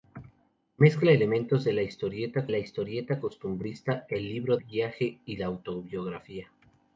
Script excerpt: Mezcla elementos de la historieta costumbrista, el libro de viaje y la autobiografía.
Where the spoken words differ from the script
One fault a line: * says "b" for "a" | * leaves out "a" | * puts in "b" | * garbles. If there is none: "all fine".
* puts in "la historieta"
* leaves out "de"